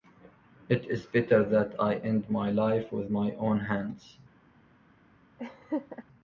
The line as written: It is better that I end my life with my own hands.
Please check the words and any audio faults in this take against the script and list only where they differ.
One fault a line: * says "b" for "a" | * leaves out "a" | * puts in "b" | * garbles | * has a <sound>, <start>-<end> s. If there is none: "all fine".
* has a laugh, 5.4-6.0 s